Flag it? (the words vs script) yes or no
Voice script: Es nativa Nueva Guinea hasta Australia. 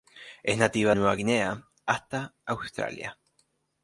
no